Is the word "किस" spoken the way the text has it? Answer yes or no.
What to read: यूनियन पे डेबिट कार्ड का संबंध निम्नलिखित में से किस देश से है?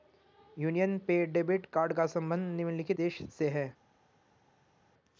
no